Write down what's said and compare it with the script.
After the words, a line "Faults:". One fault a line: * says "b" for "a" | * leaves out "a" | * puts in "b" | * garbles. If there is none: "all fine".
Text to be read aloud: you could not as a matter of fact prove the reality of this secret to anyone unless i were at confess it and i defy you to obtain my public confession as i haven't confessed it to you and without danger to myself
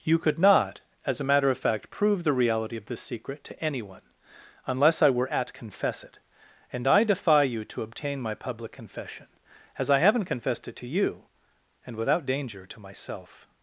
you could not as a matter of fact prove the reality of this secret to anyone unless i were at confess it and i defy you to obtain my public confession as i haven't confessed it to you and without danger to myself
Faults:
all fine